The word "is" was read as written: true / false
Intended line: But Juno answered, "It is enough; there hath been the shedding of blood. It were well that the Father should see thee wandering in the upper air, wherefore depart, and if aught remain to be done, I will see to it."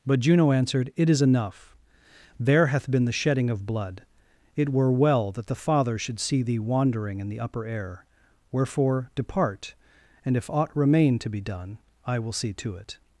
true